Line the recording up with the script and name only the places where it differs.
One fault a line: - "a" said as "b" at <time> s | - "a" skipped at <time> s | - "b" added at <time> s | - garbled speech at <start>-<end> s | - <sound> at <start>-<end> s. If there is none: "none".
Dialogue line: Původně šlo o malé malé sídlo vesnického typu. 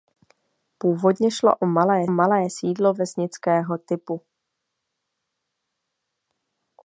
none